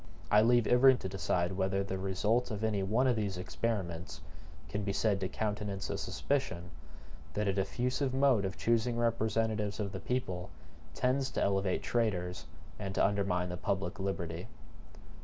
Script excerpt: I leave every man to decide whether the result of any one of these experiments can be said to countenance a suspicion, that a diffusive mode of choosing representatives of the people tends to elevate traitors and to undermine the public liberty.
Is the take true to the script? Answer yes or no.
no